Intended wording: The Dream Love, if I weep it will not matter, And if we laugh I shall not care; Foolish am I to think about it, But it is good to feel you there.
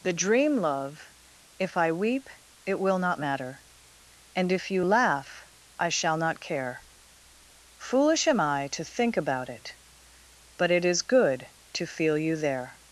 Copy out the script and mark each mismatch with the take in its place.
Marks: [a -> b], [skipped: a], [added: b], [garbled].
The Dream Love, if I weep it will not matter, And if [we -> you] laugh I shall not care; Foolish am I to think about it, But it is good to feel you there.